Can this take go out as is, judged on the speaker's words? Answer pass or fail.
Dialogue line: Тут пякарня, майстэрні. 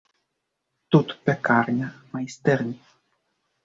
pass